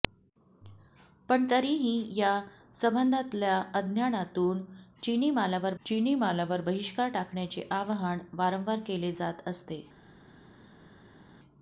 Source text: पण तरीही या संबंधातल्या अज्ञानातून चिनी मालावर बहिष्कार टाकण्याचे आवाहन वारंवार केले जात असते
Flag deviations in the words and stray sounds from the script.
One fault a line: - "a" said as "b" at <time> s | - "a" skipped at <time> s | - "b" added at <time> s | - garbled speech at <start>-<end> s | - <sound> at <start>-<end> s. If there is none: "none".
- "चिनी मालावर" added at 5.9 s